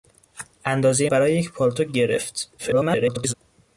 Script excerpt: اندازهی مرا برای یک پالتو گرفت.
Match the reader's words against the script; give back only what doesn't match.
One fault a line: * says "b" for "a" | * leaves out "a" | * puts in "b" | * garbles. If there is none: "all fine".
* leaves out "مرا"
* garbles